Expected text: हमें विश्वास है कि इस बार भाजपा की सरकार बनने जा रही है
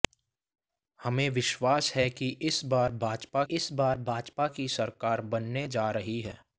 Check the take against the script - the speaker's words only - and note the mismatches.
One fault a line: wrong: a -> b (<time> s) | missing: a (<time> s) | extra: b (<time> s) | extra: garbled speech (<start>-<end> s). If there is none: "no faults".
extra: इस बार भाजपा (3.5 s)